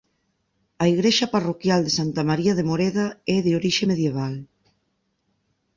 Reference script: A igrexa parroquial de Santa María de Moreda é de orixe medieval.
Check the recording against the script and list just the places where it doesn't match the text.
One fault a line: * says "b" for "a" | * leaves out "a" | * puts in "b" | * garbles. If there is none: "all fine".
all fine